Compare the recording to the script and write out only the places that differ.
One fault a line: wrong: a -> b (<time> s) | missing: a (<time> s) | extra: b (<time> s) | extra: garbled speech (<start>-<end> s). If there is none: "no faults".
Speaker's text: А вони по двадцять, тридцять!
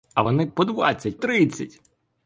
no faults